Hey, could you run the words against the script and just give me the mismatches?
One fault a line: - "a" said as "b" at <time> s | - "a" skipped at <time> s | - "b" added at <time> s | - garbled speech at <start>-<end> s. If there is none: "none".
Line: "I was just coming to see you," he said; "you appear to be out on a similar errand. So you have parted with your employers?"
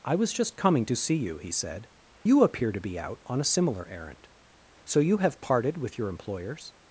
none